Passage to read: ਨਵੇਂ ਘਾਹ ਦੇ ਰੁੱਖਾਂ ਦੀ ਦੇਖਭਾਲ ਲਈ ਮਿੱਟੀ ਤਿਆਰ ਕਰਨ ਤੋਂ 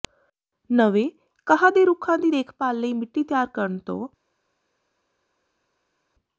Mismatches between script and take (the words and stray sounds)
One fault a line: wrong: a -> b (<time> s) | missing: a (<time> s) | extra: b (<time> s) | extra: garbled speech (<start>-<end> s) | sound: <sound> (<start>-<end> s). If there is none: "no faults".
no faults